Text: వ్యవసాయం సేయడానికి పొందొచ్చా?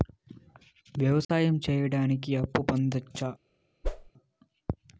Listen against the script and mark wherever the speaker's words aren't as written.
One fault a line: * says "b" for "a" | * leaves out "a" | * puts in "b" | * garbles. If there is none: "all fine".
* puts in "అప్పు"